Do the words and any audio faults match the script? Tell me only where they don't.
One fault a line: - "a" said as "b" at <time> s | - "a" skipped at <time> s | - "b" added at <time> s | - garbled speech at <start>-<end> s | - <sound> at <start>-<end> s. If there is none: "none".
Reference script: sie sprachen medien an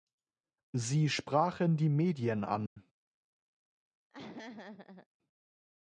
- "die" added at 1.8 s
- dropout at 2.7-2.8 s
- laugh at 4.1-5.1 s